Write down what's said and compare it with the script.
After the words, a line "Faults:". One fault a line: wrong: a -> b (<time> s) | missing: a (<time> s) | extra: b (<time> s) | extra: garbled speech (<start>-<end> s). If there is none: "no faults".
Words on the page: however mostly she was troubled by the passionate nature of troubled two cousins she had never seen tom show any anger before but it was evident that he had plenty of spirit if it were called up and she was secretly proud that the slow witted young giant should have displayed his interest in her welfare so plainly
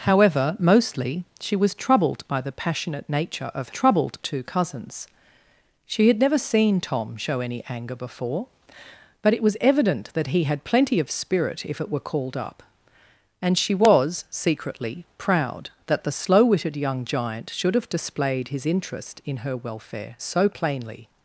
however mostly she was troubled by the passionate nature of troubled two cousins she had never seen tom show any anger before but it was evident that he had plenty of spirit if it were called up and she was secretly proud that the slow witted young giant should have displayed his interest in her welfare so plainly
Faults:
no faults